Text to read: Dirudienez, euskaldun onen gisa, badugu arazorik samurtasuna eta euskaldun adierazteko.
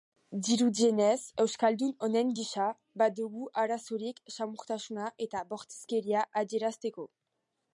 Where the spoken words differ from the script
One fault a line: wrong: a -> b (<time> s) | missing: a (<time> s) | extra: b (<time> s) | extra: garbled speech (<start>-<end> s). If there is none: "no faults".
wrong: euskaldun -> bortizkeria (5.5 s)